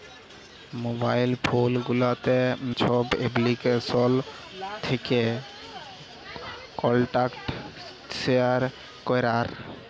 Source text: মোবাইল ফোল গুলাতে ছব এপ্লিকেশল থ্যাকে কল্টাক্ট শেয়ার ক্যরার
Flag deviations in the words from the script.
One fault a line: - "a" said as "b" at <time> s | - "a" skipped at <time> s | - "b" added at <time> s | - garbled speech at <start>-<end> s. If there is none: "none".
none